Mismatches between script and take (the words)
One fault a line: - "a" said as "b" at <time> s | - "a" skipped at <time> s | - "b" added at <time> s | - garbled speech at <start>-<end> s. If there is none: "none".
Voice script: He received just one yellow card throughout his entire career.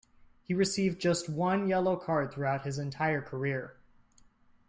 none